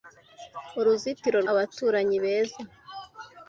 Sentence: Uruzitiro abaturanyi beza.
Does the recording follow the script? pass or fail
pass